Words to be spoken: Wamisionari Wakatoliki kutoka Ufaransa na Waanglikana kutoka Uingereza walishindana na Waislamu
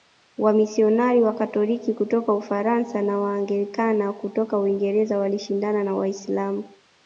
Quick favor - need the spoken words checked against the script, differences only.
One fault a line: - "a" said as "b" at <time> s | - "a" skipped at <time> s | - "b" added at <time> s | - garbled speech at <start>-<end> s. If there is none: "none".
none